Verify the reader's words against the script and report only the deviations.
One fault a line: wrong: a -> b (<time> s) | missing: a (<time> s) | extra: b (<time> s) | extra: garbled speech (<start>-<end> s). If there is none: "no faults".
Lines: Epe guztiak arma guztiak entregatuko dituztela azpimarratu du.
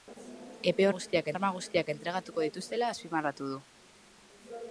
no faults